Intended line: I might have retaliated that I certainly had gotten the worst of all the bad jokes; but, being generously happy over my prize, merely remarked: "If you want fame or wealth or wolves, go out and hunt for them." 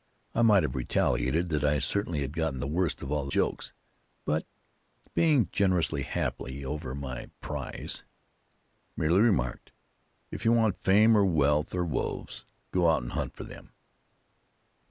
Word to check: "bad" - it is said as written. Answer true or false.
false